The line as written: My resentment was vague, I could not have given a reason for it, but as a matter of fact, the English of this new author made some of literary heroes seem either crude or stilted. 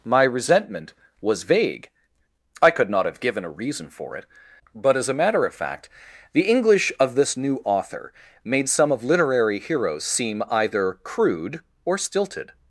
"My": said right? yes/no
yes